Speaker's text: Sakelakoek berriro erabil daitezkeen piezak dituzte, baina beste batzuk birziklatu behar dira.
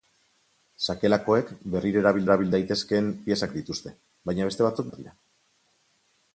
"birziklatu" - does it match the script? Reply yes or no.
no